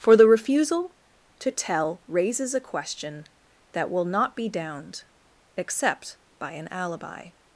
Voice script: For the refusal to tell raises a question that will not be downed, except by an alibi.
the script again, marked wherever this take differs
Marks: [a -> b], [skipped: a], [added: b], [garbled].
For the refusal to tell raises a question that will not be downed, except by an alibi.